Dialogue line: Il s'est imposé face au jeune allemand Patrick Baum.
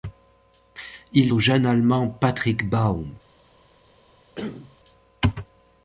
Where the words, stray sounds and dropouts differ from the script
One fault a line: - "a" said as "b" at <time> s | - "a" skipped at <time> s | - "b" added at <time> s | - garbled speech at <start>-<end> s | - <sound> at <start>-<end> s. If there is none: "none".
- "s'est imposé face" skipped at 1.3 s
- cough at 4.4-4.8 s